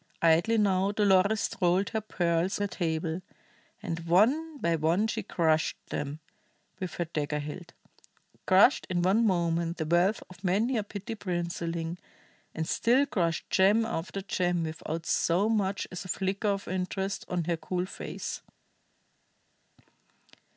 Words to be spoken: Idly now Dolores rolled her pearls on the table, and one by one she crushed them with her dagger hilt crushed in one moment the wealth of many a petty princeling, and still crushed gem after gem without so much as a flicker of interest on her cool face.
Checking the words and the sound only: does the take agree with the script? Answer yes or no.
no